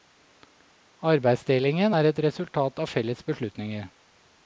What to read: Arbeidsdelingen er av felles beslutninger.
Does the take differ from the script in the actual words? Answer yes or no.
yes